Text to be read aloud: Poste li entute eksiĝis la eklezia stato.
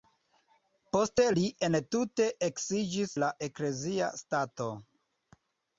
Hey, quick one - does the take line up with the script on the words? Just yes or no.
yes